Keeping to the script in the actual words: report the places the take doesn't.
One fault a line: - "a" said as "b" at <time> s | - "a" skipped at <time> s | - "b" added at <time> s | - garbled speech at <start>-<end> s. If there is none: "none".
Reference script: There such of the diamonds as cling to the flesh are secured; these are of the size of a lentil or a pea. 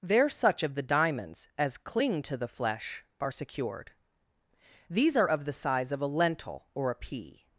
none